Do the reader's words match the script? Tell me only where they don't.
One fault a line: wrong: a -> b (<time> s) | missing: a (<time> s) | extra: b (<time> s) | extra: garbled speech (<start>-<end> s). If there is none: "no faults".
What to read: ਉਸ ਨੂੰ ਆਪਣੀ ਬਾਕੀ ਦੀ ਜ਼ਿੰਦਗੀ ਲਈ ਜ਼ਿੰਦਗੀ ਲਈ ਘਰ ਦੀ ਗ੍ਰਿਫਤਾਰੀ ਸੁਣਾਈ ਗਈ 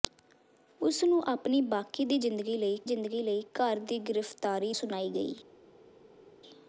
no faults